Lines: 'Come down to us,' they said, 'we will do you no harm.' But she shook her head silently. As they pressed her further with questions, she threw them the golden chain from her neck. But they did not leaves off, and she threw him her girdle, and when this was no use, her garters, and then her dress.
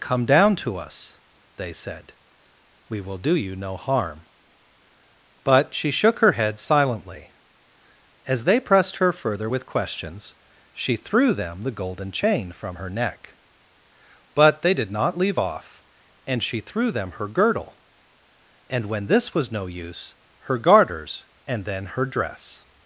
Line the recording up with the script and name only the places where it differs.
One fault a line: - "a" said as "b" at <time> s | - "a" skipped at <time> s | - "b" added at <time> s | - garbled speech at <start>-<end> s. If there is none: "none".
- "leaves" said as "leave" at 15.2 s
- "him" said as "them" at 16.9 s